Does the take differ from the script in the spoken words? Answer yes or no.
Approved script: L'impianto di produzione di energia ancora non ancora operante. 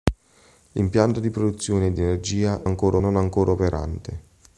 no